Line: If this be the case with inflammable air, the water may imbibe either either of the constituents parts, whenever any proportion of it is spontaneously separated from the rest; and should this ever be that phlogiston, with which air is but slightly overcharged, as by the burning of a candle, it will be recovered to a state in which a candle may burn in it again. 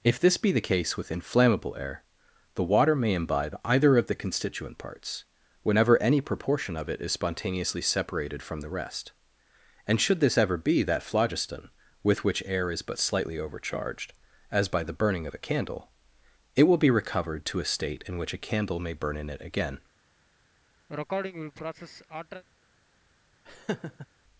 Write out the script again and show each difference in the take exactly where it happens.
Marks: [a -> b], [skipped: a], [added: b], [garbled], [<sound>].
If this be the case with inflammable air, the water may imbibe either [skipped: either] of the [constituents -> constituent] parts, whenever any proportion of it is spontaneously separated from the rest; and should this ever be that phlogiston, with which air is but slightly overcharged, as by the burning of a candle, it will be recovered to a state in which a candle may burn in it again. [sneeze] [laugh]